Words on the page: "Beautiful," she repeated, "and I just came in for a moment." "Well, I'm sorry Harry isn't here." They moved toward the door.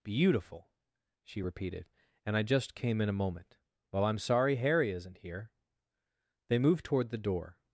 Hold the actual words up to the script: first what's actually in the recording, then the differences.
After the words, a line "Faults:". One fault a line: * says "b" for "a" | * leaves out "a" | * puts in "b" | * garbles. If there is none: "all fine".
"Beautiful," she repeated, "and I just came in a moment." "Well, I'm sorry Harry isn't here." They moved toward the door.
Faults:
* leaves out "for"